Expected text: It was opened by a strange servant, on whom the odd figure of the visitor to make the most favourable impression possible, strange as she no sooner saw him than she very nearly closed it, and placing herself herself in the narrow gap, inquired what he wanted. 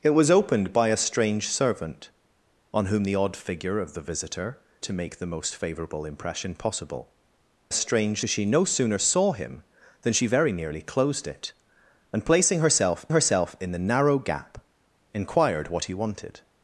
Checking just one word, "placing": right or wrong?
right